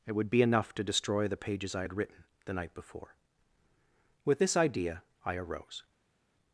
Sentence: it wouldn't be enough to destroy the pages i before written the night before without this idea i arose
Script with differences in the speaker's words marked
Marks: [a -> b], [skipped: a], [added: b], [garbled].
it [wouldn't -> would] be enough to destroy the pages i [before -> had] written the night before [without -> with] this idea i arose